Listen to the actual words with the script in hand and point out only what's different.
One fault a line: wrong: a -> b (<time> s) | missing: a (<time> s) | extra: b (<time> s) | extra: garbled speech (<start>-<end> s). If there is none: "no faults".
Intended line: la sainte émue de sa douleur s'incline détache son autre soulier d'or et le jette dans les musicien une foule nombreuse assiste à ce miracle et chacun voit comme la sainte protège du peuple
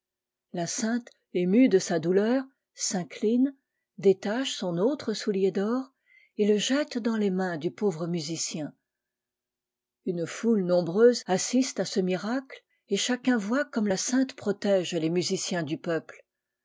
extra: mains du pauvre (7.3 s)
extra: les musiciens (14.9 s)